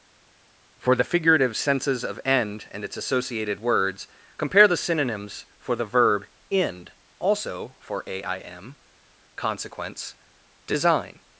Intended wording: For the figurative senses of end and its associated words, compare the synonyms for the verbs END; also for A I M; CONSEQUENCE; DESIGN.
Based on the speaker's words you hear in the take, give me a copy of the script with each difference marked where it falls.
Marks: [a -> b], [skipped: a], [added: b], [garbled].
For the figurative senses of end and its associated words, compare the synonyms for the [verbs -> verb] END; also for A I M; CONSEQUENCE; DESIGN.